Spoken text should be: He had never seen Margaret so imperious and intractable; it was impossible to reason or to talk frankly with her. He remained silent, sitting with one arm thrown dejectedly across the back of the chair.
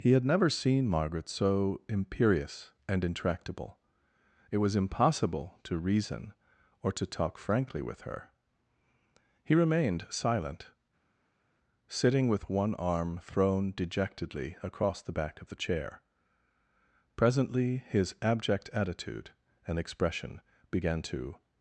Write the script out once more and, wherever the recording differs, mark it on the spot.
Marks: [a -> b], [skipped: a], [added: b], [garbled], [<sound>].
He had never seen Margaret so imperious and intractable; it was impossible to reason or to talk frankly with her. He remained silent, sitting with one arm thrown dejectedly across the back of the chair. [added: Presently his abject attitude and expression began to]